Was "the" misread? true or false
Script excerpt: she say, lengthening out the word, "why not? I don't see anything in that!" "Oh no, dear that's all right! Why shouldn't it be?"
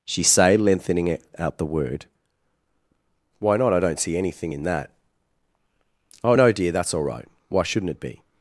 false